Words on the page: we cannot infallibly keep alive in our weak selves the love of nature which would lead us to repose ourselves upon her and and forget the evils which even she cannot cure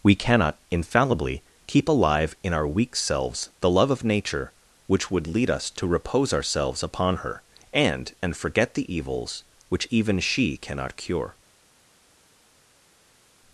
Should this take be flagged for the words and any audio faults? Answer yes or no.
no